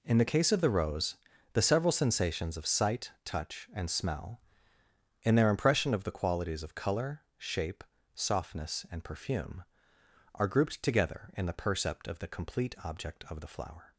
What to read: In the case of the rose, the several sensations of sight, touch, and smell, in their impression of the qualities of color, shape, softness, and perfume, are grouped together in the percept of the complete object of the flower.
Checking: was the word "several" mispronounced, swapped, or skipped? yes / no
no